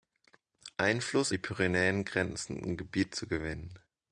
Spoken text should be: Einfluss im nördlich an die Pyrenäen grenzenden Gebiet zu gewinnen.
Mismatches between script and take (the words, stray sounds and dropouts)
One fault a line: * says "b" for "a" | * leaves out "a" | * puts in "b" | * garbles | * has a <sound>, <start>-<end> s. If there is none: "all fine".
* leaves out "im nördlich an"